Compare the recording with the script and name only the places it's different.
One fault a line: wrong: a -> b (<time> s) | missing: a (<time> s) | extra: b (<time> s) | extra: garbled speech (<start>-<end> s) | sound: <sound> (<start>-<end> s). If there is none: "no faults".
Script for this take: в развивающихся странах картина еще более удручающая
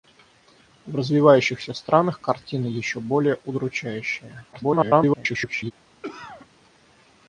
extra: garbled speech (4.5-5.7 s)
sound: cough (6.0-6.5 s)